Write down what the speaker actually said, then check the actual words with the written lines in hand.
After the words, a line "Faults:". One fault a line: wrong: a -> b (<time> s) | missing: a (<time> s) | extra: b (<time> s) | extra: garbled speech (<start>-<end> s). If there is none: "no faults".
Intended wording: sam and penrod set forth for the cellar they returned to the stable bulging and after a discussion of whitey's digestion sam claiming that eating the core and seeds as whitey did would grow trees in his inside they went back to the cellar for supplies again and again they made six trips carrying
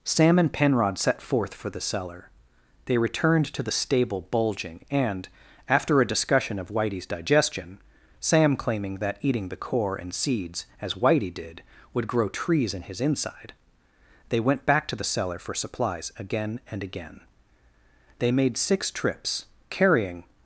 sam and penrod set forth for the cellar they returned to the stable bulging and after a discussion of whitey's digestion sam claiming that eating the core and seeds as whitey did would grow trees in his inside they went back to the cellar for supplies again and again they made six trips carrying
Faults:
no faults